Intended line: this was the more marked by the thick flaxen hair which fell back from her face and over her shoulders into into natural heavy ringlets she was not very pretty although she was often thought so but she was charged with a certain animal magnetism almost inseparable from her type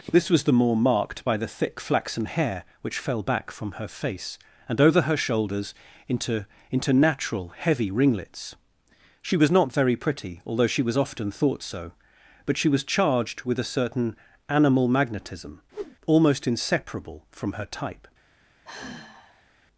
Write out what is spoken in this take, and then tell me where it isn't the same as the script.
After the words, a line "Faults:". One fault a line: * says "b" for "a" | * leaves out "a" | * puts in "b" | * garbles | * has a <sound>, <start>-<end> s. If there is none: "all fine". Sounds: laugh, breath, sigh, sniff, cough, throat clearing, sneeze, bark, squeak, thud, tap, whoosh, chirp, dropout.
this was the more marked by the thick flaxen hair which fell back from her face and over her shoulders into into natural heavy ringlets she was not very pretty although she was often thought so but she was charged with a certain animal magnetism almost inseparable from her type
Faults:
* has a whoosh, 15.7-16.0 s
* has a sigh, 18.6-19.5 s